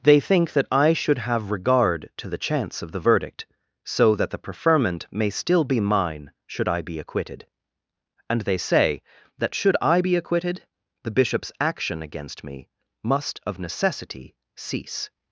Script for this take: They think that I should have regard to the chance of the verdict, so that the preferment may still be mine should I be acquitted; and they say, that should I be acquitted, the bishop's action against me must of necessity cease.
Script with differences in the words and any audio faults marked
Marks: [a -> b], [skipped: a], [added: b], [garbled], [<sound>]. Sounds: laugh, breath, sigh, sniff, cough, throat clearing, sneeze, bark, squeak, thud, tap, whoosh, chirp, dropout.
They think that I should have regard to the chance of the verdict, so that the preferment may still be mine should I be acquitted; and they say, that should I be acquitted, the bishop's action against me must of necessity cease.